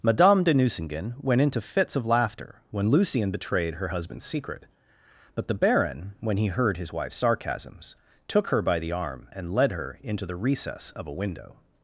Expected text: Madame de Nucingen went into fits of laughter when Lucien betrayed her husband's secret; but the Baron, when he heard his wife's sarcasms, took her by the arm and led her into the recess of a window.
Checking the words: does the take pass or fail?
pass